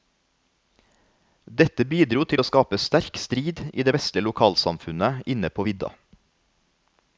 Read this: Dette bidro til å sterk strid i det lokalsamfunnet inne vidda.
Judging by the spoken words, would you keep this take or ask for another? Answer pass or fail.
fail